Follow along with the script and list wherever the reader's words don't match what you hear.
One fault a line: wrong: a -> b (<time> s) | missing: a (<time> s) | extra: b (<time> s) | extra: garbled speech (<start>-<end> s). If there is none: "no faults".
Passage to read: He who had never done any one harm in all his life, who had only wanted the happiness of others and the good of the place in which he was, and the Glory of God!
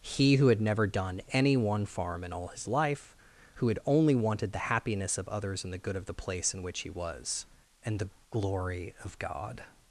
wrong: harm -> farm (1.9 s)